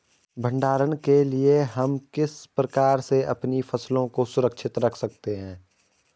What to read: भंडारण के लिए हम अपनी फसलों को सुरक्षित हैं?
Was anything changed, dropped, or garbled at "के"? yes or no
no